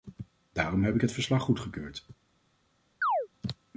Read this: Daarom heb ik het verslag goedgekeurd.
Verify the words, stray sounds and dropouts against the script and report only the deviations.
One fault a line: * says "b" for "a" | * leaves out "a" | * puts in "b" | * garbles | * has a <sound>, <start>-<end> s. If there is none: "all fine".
* has a chirp, 3.0-3.3 s